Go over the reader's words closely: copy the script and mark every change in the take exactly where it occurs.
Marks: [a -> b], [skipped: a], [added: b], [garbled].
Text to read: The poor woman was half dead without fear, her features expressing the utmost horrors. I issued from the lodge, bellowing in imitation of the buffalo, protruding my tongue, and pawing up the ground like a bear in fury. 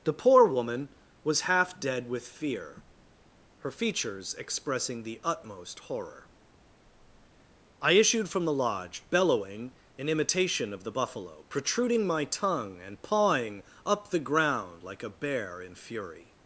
The poor woman was half dead [without -> with] fear, her features expressing the utmost [horrors. -> horror] I issued from the lodge, bellowing in imitation of the buffalo, protruding my tongue, and pawing up the ground like a bear in fury.